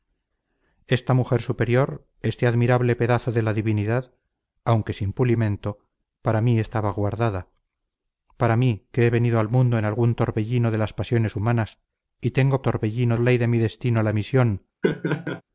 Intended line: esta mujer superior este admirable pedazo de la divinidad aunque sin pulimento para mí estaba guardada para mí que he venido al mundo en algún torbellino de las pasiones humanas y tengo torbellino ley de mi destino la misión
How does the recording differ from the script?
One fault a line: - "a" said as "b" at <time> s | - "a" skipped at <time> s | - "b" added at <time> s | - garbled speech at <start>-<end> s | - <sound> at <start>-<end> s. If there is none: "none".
- laugh at 14.8-15.4 s